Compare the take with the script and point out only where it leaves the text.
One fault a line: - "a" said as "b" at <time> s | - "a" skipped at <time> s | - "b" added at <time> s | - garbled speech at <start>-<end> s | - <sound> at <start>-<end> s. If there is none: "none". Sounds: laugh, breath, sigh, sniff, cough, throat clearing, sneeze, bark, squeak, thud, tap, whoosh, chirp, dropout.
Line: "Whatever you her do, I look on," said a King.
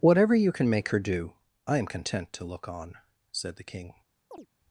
- "can make" added at 0.5 s
- "am content to" added at 1.8 s
- "a" said as "the" at 3.6 s
- chirp at 4.3-4.5 s